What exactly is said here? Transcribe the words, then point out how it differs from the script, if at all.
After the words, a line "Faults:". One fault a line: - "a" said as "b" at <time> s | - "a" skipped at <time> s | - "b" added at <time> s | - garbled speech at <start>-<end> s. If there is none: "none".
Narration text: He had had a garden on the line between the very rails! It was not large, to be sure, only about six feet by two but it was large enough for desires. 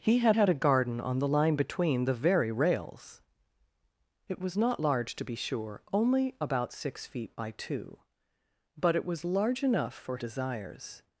He had had a garden on the line between the very rails! It was not large, to be sure, only about six feet by two but it was large enough for desires.
Faults:
none